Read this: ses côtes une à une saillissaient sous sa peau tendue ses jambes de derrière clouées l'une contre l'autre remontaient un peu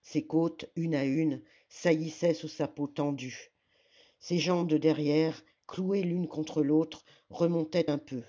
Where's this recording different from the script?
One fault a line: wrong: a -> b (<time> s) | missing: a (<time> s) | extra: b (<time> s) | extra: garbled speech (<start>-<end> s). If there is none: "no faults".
no faults